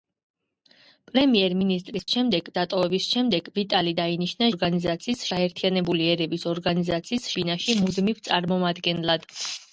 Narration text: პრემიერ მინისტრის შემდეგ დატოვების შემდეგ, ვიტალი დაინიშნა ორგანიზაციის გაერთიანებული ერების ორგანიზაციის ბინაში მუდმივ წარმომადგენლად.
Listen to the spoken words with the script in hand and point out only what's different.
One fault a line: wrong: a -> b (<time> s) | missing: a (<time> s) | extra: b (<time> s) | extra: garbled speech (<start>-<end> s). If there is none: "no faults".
no faults